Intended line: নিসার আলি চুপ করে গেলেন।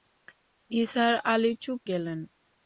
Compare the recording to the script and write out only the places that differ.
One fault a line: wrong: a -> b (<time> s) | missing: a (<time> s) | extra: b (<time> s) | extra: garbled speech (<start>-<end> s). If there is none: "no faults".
missing: করে (1.8 s)